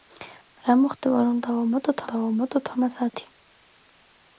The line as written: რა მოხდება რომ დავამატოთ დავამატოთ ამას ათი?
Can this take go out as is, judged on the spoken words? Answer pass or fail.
pass